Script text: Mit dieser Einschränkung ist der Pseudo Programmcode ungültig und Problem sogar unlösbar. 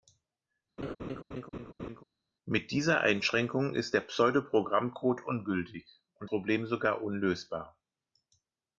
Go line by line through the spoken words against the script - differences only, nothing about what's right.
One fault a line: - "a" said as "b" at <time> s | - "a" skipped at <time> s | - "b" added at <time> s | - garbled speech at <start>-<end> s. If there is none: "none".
none